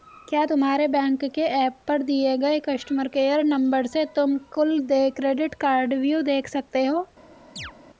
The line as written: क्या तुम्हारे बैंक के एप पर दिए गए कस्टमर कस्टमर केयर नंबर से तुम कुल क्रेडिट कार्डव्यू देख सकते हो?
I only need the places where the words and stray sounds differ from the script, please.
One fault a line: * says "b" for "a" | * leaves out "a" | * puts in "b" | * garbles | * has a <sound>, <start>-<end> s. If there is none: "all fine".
* leaves out "कस्टमर"
* puts in "देय"
* has a chirp, 7.6-7.7 s